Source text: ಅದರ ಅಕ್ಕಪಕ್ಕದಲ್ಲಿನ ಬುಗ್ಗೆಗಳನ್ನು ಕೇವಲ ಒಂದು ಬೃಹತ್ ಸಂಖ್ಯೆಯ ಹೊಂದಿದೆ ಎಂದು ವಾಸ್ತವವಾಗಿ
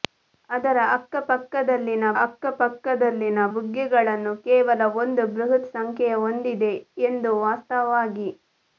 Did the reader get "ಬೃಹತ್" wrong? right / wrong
right